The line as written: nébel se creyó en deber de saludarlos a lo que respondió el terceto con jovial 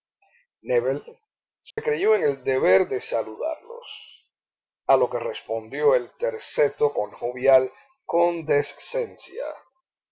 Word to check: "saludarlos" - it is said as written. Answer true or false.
true